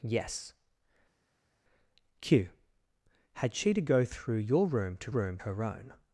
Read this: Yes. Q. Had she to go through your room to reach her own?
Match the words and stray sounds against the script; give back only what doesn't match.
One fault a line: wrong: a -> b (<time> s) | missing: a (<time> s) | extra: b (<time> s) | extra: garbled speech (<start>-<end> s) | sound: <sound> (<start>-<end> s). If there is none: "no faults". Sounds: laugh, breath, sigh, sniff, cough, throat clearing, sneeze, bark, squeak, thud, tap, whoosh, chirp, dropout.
wrong: reach -> room (5.1 s)